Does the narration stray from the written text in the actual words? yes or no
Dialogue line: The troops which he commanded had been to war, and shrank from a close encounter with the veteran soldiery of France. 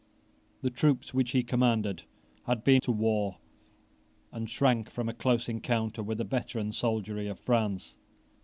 no